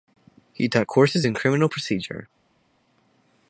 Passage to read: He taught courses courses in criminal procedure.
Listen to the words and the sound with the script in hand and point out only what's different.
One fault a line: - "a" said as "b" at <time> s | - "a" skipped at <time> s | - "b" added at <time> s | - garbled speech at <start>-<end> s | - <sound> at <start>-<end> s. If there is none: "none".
- "courses" skipped at 1.3 s